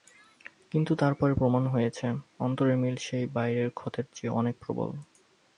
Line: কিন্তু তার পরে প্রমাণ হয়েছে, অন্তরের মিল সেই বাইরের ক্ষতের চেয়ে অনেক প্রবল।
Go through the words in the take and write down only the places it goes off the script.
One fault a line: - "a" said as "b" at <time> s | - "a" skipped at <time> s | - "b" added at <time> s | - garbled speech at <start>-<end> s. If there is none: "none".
none